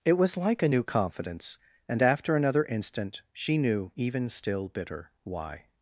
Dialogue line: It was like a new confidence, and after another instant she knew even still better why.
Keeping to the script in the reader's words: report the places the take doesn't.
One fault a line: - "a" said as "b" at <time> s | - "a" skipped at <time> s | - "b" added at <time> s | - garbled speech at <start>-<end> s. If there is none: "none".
- "better" said as "bitter" at 4.7 s